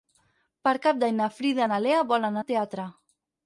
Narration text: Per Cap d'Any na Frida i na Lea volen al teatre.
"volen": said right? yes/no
yes